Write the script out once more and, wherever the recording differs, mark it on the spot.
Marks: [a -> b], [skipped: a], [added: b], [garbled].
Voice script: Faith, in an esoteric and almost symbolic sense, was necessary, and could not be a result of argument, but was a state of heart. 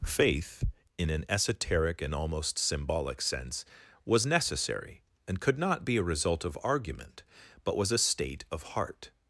Faith, in an esoteric and almost symbolic sense, was necessary, and could not be a result of argument, but was a state of heart.